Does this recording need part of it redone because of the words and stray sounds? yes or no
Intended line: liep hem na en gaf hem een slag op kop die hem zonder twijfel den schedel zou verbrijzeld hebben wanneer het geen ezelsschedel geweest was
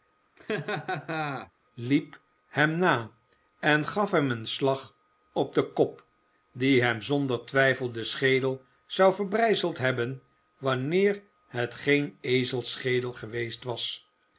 yes